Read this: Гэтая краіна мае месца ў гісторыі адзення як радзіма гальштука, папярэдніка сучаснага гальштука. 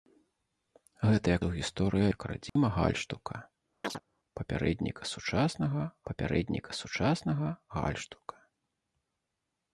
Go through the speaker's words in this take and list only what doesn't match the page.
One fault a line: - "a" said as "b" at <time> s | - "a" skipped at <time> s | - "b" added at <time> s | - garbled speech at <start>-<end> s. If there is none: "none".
- "краіна мае месца" skipped at 1.4 s
- "адзення" skipped at 2.0 s
- "папярэдніка сучаснага" added at 6.1 s